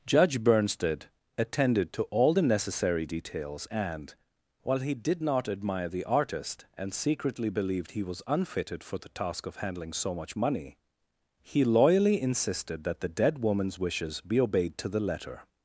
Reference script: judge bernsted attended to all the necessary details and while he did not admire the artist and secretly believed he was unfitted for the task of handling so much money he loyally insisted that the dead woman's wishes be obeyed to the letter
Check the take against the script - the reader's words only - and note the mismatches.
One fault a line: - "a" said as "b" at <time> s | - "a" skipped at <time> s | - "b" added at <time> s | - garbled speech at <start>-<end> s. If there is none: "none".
none